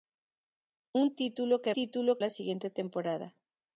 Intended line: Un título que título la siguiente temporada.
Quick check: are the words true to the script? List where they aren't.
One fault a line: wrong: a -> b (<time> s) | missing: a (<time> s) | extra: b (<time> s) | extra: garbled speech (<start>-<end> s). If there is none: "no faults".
no faults